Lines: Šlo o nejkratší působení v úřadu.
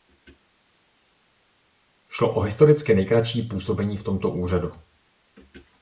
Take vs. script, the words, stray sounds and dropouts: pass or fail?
fail